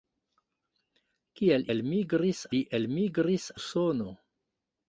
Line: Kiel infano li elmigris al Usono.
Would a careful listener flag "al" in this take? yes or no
yes